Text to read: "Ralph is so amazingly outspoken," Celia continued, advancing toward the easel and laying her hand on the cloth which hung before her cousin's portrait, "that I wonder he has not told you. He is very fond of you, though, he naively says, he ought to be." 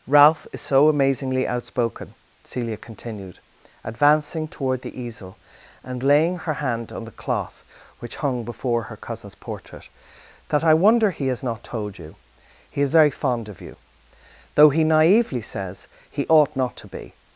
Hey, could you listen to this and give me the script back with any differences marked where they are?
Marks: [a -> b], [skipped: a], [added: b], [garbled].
"Ralph is so amazingly outspoken," Celia continued, advancing toward the easel and laying her hand on the cloth which hung before her cousin's portrait, "that I wonder he has not told you. He is very fond of you, though, he naively says, he ought [added: not] to be."